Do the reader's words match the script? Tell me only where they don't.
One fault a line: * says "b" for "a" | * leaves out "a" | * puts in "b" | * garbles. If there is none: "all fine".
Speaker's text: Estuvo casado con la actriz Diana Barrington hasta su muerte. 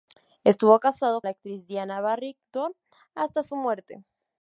* leaves out "con"